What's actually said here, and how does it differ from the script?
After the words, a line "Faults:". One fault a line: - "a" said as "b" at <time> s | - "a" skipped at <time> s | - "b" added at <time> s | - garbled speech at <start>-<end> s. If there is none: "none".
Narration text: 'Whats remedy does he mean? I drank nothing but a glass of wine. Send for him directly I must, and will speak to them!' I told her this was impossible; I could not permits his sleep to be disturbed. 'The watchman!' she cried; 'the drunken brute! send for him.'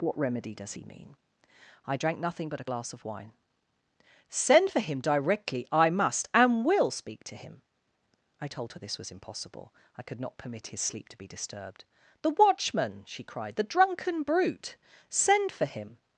'What remedy does he mean? I drank nothing but a glass of wine. Send for him directly I must, and will speak to him!' I told her this was impossible; I could not permit his sleep to be disturbed. 'The watchman!' she cried; 'the drunken brute! send for him.'
Faults:
- "Whats" said as "What" at 0.0 s
- "them" said as "him" at 7.4 s
- "permits" said as "permit" at 10.4 s